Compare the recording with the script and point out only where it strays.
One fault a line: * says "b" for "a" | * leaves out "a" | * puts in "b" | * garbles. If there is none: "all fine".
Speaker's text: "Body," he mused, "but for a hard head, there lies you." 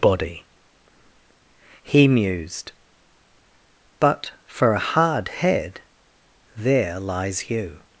all fine